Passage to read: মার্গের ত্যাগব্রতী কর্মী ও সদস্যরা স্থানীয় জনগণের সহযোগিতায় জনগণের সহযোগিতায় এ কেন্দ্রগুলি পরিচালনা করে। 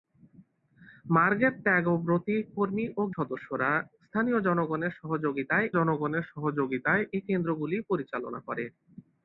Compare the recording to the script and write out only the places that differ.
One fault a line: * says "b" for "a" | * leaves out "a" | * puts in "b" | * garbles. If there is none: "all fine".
all fine